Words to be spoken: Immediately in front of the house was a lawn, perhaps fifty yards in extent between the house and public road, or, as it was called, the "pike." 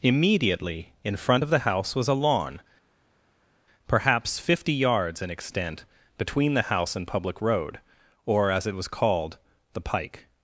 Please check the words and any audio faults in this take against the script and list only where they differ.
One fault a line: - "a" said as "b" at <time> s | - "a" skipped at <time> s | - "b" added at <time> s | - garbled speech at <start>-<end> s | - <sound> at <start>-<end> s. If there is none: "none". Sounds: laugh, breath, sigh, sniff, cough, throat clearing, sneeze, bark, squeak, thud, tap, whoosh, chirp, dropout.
none